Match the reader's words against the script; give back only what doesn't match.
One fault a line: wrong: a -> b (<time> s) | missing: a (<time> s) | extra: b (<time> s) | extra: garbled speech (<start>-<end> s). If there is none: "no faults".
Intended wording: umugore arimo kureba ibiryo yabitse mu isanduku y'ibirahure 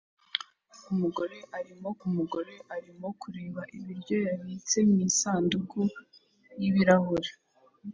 extra: umugore arimo (2.1 s)